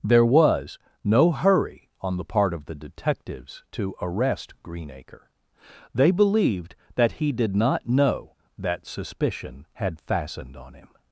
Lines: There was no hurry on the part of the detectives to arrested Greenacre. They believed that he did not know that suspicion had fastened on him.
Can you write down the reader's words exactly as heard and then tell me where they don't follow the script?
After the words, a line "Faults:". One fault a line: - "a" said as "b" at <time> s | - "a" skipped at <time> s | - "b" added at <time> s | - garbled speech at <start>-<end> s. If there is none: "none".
There was no hurry on the part of the detectives to arrest Greenacre. They believed that he did not know that suspicion had fastened on him.
Faults:
- "arrested" said as "arrest" at 4.0 s